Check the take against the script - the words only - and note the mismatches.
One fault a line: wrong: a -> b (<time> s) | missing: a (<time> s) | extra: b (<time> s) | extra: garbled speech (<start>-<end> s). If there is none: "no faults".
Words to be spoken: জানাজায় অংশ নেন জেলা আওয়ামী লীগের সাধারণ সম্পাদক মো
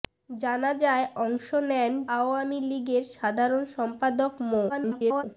missing: জেলা (1.9 s)
extra: garbled speech (4.7-5.2 s)